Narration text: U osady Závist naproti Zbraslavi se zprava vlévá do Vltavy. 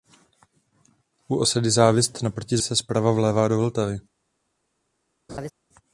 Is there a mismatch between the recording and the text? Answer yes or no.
yes